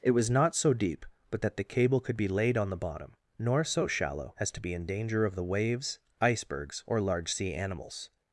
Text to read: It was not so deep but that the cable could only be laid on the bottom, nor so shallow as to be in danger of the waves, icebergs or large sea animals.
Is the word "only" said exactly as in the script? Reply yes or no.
no